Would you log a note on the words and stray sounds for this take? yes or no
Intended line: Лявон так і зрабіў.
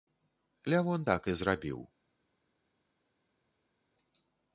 no